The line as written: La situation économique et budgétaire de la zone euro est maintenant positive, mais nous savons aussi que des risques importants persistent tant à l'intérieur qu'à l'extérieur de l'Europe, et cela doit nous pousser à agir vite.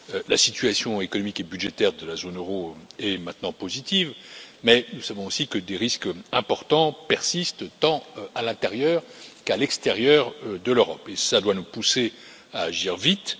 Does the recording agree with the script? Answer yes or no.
yes